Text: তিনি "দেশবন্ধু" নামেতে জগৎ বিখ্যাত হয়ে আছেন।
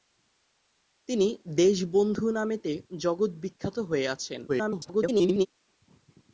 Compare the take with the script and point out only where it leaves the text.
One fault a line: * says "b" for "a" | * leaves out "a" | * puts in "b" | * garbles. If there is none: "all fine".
* garbles